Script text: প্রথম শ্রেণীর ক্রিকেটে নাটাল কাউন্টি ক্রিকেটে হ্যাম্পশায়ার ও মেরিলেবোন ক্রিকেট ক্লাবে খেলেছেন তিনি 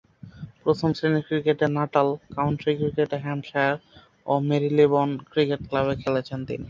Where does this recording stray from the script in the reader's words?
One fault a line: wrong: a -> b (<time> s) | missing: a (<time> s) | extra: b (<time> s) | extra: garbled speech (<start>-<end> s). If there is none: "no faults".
no faults